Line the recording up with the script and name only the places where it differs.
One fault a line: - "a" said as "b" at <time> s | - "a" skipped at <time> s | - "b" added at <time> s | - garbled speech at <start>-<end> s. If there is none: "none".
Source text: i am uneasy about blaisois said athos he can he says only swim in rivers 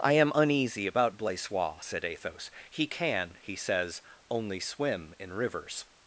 none